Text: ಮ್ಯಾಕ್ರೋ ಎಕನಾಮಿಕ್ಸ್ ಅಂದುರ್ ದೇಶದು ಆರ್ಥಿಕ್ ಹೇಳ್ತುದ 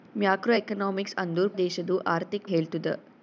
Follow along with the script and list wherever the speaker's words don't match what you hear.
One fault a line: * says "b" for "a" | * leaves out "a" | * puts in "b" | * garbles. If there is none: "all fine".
all fine